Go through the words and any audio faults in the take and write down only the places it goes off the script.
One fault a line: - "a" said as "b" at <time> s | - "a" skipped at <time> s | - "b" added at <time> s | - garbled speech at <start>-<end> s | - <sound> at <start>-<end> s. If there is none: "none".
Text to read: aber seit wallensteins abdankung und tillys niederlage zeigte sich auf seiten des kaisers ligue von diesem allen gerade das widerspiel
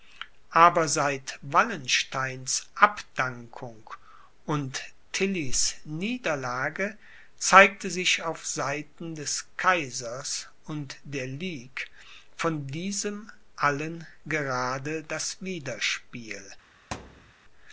- "und der" added at 10.7 s
- thud at 16.9-17.3 s